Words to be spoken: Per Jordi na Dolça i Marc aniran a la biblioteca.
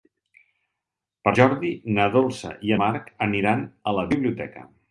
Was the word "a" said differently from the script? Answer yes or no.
no